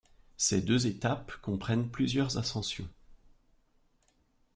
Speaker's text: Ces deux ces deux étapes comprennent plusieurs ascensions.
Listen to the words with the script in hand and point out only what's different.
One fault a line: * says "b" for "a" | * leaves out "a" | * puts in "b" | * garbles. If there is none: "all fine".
* leaves out "ces deux"